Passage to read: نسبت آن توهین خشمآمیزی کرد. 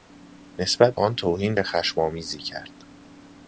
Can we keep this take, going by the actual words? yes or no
yes